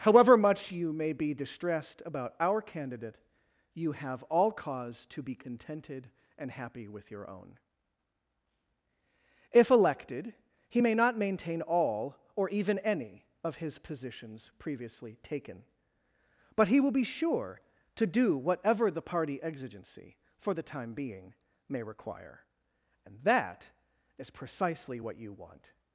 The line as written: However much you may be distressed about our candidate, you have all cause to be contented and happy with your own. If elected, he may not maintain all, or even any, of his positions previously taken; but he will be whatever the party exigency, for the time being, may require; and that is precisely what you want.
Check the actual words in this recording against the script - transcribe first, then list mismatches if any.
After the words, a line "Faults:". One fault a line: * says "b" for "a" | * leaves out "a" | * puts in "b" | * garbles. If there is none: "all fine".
However much you may be distressed about our candidate, you have all cause to be contented and happy with your own. If elected, he may not maintain all, or even any, of his positions previously taken; but he will be sure to do whatever the party exigency, for the time being, may require; and that is precisely what you want.
Faults:
* puts in "sure to do"